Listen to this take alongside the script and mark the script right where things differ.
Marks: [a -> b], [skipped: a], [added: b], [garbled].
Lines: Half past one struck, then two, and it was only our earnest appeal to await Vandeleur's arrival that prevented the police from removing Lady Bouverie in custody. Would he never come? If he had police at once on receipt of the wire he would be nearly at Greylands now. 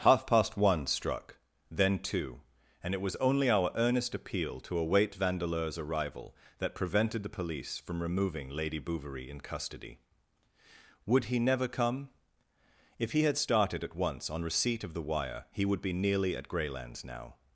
Half past one struck, then two, and it was only our earnest appeal to await Vandeleur's arrival that prevented the police from removing Lady Bouverie in custody. Would he never come? If he had [police -> started] at once on receipt of the wire he would be nearly at Greylands now.